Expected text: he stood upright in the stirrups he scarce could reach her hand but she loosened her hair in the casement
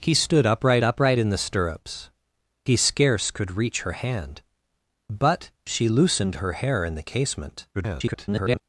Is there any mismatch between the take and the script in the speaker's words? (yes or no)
yes